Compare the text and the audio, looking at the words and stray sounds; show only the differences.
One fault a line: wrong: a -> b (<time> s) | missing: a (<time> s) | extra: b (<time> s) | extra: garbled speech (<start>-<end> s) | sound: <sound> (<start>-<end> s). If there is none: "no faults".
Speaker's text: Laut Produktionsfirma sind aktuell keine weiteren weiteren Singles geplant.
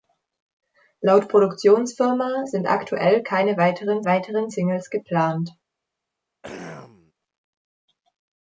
sound: throat clearing (6.4-7.1 s)